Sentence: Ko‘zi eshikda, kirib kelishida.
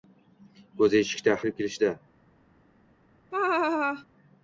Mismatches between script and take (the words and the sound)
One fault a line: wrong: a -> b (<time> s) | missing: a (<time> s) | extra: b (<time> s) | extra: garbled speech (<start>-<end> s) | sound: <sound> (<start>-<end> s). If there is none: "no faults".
sound: laugh (3.3-4.1 s)